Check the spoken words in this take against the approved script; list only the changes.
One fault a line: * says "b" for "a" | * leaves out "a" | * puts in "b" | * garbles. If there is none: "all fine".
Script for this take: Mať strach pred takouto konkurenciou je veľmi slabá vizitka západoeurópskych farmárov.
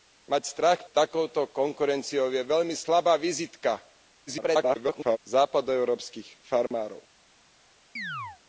* leaves out "pred"
* garbles